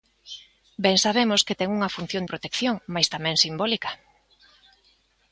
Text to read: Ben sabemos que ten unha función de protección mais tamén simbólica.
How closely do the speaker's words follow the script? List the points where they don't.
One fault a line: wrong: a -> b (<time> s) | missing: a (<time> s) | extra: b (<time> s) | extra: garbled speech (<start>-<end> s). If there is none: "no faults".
missing: de (2.2 s)